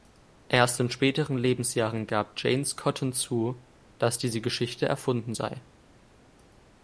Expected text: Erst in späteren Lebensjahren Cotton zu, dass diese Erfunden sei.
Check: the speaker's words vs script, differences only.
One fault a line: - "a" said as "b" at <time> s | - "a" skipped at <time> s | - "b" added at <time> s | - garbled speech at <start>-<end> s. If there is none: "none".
- "gab James" added at 2.1 s
- "Geschichte" added at 4.4 s